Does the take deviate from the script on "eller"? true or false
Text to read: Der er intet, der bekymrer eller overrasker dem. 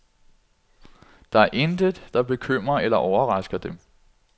false